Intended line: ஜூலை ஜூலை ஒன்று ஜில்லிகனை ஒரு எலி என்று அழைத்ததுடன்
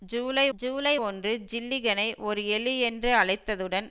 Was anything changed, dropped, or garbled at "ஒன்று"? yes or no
no